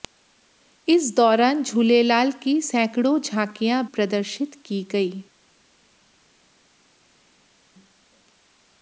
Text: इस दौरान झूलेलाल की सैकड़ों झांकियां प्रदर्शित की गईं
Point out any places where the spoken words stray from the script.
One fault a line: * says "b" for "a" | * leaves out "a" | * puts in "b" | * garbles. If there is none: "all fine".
all fine